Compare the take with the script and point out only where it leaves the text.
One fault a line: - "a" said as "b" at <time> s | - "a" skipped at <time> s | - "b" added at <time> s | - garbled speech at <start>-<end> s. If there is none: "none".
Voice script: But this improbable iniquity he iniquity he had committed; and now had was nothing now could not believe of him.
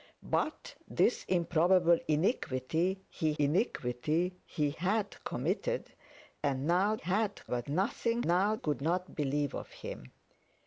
none